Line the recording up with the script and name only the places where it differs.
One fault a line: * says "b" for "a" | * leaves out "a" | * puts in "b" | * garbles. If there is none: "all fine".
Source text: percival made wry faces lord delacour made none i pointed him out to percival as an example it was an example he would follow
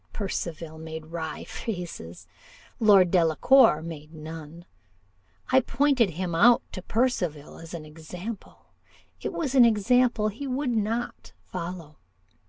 * puts in "not"